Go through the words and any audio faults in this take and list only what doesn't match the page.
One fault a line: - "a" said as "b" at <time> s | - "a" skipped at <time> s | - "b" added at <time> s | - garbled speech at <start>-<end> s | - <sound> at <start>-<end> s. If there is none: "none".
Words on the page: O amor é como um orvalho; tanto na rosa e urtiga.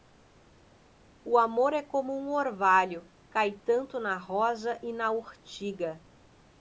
- "cai" added at 3.3 s
- "na" added at 4.9 s